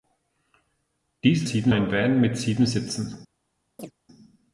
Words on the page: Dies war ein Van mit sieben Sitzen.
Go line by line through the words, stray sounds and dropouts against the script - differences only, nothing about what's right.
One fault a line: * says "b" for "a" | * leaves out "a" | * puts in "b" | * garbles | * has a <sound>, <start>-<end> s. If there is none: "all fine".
* says "sieben" for "war"
* has a chirp, 3.8-3.9 s